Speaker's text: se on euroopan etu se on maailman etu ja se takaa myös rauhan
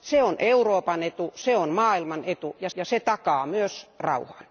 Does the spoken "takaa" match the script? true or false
true